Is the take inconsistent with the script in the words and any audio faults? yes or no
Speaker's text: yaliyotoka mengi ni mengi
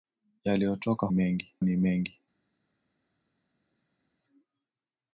no